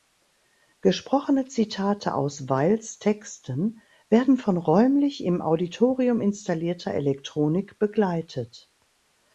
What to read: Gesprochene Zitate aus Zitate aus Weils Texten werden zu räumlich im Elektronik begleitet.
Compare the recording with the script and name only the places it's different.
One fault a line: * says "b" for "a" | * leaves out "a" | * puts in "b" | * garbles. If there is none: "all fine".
* leaves out "Zitate aus"
* says "von" for "zu"
* puts in "Auditorium installierter"